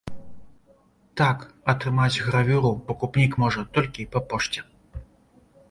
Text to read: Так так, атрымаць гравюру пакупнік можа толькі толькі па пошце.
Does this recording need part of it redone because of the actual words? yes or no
yes